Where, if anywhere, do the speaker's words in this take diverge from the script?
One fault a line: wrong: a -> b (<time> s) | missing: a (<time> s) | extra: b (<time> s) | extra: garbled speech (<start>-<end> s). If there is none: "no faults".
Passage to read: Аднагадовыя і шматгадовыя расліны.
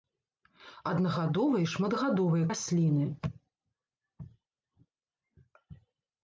no faults